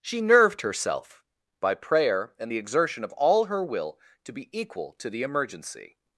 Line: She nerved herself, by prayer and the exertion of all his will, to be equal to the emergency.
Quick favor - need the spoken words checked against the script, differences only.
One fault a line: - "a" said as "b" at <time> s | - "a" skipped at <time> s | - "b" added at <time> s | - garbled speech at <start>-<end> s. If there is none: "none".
- "his" said as "her" at 3.4 s